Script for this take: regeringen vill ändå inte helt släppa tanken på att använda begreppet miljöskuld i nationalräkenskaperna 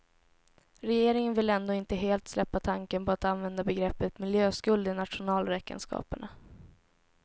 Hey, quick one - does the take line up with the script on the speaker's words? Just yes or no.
yes